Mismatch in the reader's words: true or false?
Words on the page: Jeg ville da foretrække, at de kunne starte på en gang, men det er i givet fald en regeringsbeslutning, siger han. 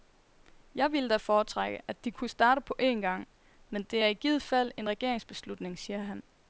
false